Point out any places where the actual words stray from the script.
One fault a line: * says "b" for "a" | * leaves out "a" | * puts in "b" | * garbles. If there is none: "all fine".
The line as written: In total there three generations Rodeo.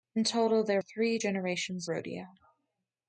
all fine